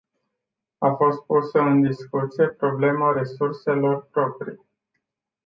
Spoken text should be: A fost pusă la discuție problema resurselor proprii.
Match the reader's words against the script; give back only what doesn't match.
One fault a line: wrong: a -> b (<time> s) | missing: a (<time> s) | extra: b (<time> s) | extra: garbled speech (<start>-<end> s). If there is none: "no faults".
wrong: la -> în (1.6 s)